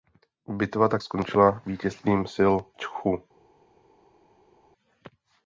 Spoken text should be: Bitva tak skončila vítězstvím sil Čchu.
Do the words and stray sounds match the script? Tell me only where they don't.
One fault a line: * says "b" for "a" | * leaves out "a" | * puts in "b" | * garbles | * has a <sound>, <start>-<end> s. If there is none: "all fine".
all fine